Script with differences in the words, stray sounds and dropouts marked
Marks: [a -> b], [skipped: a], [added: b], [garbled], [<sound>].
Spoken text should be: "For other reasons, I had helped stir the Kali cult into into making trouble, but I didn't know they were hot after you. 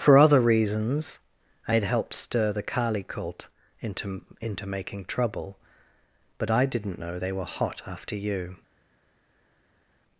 "For other reasons, I had helped stir the Kali cult into into making trouble, but I didn't know they were hot after you.